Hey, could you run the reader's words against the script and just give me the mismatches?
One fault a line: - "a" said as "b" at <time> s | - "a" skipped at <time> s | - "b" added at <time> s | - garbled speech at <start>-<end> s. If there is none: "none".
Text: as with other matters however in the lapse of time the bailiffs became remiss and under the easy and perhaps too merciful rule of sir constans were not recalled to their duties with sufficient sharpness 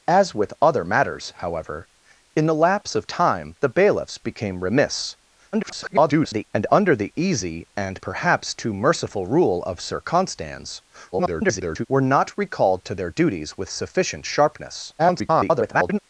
- garbled speech at 5.5-6.4 s
- garbled speech at 11.1-11.9 s
- garbled speech at 15.0-16.0 s